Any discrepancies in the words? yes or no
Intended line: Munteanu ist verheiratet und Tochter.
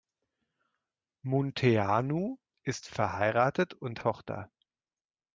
no